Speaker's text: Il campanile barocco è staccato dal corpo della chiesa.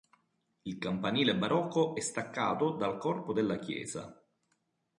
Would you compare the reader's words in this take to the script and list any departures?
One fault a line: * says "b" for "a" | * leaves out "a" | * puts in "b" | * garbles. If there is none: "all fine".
all fine